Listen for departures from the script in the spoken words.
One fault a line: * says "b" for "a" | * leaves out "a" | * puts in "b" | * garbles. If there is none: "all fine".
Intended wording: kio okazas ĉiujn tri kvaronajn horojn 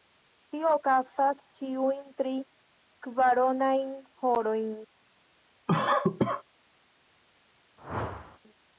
* says "tio" for "kio"